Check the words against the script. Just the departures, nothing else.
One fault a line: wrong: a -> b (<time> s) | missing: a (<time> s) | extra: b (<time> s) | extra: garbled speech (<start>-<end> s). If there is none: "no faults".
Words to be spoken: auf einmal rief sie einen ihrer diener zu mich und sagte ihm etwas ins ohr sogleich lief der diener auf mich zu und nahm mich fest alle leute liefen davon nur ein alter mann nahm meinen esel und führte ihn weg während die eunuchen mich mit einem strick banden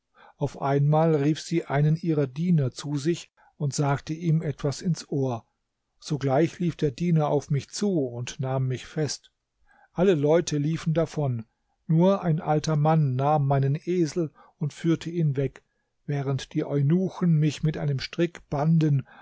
wrong: mich -> sich (3.0 s)